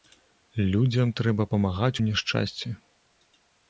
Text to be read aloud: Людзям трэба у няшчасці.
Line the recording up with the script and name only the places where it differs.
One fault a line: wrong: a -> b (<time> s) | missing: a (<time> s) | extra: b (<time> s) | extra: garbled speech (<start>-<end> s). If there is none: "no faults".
extra: памагаць (1.5 s)